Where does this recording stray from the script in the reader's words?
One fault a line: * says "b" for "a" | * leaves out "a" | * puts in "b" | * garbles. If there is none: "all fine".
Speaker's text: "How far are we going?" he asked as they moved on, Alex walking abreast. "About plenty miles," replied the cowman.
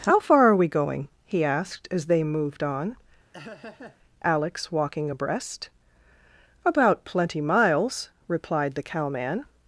all fine